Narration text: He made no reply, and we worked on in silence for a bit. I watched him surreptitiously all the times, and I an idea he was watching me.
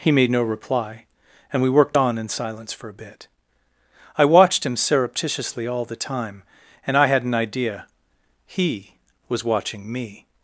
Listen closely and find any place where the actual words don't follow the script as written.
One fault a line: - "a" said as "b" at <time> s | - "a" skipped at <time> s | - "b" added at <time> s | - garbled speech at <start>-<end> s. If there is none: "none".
- "times" said as "time" at 5.9 s
- "had" added at 7.1 s